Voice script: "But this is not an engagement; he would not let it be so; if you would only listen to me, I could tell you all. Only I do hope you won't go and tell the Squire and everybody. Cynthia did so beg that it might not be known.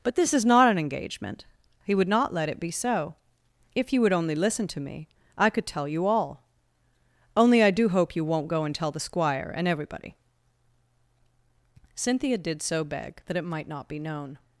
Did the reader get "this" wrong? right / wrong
right